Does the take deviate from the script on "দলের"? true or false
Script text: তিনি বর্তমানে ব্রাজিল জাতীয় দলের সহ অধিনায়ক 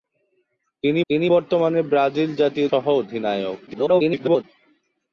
true